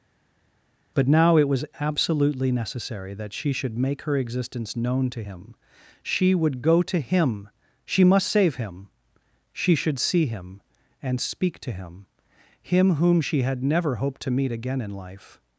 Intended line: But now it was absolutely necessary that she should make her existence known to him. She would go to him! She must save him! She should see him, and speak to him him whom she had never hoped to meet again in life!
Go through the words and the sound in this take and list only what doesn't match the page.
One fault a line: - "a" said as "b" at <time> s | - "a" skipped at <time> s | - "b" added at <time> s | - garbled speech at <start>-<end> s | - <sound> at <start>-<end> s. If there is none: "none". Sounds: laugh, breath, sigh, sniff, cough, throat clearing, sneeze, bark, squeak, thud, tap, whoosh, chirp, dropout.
none